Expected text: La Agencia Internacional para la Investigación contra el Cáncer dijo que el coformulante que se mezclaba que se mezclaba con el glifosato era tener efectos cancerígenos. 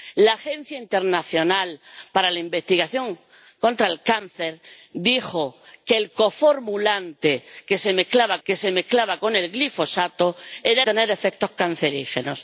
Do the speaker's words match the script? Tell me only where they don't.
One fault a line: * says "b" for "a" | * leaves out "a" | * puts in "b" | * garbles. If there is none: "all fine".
all fine